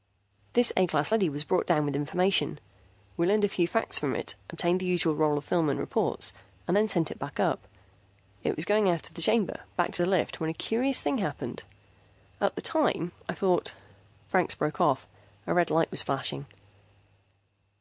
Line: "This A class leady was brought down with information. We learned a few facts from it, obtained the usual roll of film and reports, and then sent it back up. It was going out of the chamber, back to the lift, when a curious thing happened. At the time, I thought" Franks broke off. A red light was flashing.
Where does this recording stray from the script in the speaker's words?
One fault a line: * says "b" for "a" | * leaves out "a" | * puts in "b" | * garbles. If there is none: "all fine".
all fine